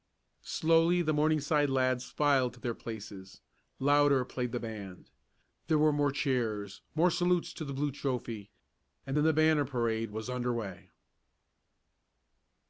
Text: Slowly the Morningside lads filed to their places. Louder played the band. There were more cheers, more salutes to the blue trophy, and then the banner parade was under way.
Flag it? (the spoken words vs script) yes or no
no